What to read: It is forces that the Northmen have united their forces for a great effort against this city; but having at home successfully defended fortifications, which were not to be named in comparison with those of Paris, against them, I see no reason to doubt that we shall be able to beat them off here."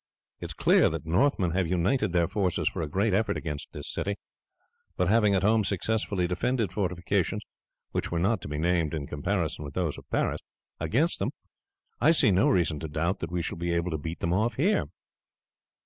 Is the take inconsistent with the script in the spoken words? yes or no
yes